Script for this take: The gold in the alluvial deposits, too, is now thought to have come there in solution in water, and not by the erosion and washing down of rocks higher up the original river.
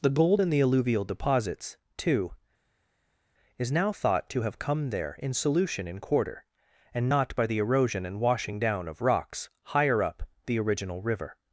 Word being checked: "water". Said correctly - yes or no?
no